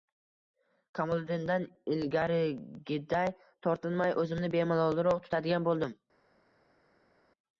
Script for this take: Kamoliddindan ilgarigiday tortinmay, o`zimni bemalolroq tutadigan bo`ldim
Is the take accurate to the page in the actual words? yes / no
yes